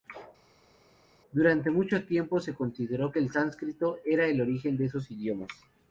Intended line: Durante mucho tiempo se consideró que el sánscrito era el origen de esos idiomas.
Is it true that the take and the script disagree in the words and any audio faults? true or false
false